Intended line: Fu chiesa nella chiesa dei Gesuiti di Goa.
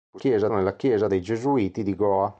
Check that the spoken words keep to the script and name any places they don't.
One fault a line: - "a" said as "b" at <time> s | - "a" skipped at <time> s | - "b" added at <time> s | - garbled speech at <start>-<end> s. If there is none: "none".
none